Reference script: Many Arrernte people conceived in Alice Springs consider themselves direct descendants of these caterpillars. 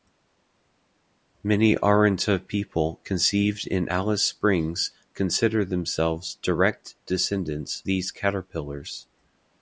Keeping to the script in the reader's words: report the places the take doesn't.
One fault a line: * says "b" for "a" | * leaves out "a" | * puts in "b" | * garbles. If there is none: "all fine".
* leaves out "of"